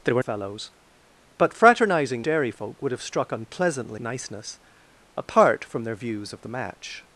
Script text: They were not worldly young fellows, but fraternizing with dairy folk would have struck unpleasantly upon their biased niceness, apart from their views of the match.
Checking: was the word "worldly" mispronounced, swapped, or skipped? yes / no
yes